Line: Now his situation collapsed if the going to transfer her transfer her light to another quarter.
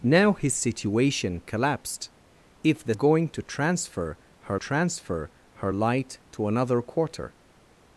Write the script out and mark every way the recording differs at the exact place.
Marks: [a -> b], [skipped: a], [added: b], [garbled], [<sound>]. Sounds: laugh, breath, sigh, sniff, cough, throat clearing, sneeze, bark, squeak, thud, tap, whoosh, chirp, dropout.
Now his situation collapsed if the going to transfer her transfer her light to another quarter.